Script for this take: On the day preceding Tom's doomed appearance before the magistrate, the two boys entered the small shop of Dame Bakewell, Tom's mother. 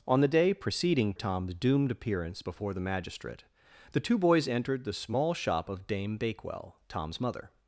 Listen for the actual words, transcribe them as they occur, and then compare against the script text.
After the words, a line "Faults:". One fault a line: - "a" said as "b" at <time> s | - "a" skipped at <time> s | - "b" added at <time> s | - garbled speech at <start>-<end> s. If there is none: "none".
On the day preceding Tom's doomed appearance before the magistrate, the two boys entered the small shop of Dame Bakewell, Tom's mother.
Faults:
none